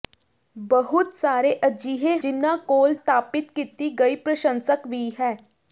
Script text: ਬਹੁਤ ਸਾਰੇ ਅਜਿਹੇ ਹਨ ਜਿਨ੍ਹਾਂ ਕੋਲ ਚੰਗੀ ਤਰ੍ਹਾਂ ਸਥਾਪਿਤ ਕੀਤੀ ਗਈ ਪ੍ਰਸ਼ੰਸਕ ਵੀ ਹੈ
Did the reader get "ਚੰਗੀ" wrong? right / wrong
wrong